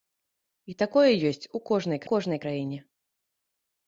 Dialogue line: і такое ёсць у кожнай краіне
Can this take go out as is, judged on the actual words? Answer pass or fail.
fail